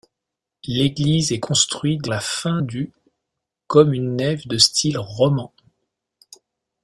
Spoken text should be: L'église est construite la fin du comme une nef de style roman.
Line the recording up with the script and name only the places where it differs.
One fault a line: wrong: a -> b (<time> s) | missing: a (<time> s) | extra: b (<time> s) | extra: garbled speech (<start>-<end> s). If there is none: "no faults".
no faults